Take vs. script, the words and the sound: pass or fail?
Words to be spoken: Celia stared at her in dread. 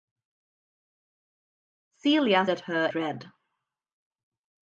fail